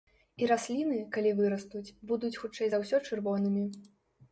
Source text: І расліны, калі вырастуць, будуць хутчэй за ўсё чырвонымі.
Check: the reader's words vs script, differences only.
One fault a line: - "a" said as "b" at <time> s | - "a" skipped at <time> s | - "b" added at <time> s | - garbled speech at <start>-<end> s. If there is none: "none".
none